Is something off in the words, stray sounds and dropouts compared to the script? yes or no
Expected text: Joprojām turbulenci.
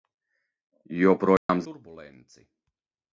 yes